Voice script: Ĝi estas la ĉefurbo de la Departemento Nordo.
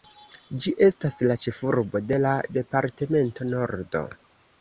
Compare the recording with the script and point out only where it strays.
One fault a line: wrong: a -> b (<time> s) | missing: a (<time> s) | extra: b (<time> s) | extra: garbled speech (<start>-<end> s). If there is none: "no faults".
no faults